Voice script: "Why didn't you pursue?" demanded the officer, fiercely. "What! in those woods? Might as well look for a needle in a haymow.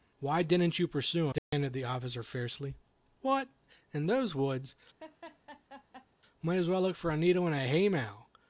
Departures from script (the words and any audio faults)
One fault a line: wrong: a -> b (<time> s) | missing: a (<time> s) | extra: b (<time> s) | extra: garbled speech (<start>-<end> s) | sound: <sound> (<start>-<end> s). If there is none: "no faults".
sound: dropout (1.4-1.5 s)
sound: laugh (5.0-6.1 s)